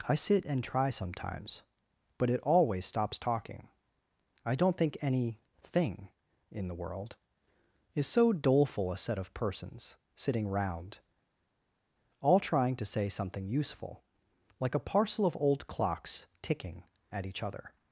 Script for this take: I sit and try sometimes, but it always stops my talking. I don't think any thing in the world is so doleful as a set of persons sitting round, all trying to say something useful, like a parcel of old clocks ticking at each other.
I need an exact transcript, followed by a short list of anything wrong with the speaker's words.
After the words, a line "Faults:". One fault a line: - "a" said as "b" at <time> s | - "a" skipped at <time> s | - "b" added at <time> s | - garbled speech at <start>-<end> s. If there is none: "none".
I sit and try sometimes, but it always stops talking. I don't think any thing in the world is so doleful a set of persons sitting round, all trying to say something useful, like a parcel of old clocks ticking at each other.
Faults:
- "my" skipped at 3.2 s
- "as" skipped at 8.9 s